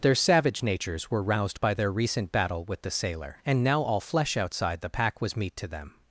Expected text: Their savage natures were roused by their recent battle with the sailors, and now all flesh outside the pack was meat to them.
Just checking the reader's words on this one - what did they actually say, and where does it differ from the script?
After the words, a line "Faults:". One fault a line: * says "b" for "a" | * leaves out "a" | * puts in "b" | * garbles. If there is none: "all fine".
Their savage natures were roused by their recent battle with the sailor, and now all flesh outside the pack was meat to them.
Faults:
* says "sailor" for "sailors"